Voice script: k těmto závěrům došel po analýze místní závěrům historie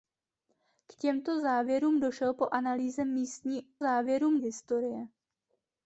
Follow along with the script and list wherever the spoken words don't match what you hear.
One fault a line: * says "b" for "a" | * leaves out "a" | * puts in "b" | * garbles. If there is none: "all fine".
all fine